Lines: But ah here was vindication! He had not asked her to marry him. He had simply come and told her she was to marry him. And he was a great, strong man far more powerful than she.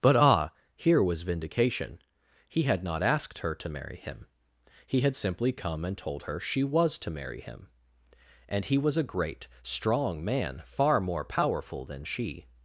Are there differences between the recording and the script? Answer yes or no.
no